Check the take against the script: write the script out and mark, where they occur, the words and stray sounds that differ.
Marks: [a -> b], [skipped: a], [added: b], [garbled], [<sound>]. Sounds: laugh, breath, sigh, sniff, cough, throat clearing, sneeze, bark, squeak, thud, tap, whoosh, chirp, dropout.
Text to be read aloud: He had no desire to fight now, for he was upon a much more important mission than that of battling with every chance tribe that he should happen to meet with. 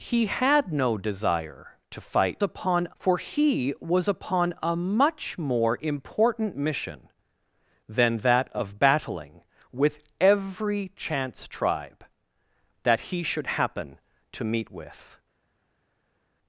He had no desire to fight [now, -> upon] for he was upon a much more important mission than that of battling with every chance tribe that he should happen to meet with.